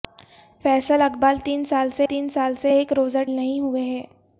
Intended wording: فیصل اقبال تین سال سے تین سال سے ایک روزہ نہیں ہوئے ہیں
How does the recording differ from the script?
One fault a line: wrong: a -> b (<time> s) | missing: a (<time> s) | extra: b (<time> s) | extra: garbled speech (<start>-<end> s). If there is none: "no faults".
no faults